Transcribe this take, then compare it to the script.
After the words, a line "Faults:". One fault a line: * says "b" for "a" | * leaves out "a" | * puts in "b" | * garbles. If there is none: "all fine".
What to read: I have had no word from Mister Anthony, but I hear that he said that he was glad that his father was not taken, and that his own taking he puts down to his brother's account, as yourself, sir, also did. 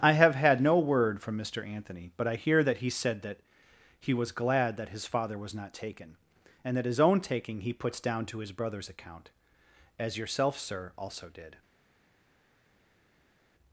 I have had no word from Mister Anthony, but I hear that he said that he was glad that his father was not taken, and that his own taking he puts down to his brother's account, as yourself, sir, also did.
Faults:
all fine